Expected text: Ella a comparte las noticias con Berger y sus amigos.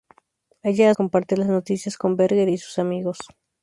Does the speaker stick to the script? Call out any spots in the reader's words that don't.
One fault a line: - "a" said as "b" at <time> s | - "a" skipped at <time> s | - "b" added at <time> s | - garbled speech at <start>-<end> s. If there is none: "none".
none